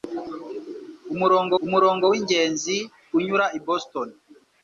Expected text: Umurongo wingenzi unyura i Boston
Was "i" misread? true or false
false